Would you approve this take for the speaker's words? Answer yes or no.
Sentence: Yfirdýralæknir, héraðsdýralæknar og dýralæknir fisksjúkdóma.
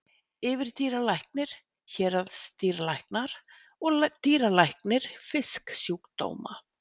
yes